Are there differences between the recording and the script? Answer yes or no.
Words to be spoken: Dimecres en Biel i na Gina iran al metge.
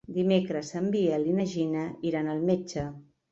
no